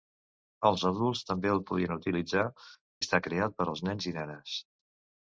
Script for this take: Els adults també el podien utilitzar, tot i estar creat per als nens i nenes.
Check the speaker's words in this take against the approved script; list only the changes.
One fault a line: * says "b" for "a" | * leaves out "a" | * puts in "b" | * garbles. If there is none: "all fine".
* leaves out "tot"